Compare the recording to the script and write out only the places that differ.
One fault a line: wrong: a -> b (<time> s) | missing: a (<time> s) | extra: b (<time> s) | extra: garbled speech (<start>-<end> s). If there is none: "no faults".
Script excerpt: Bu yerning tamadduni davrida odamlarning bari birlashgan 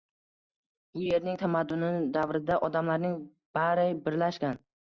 no faults